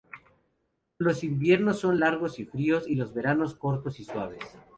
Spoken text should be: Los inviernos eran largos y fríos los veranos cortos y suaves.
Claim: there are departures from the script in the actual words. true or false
true